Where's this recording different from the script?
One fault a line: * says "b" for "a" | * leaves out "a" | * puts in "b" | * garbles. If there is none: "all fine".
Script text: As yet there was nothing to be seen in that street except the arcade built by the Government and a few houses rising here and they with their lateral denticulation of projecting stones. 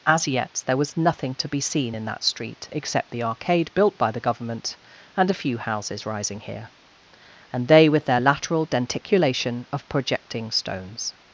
all fine